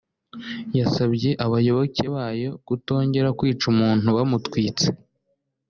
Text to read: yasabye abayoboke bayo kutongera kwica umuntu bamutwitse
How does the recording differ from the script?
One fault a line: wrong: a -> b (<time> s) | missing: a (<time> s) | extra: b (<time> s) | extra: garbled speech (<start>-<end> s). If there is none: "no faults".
no faults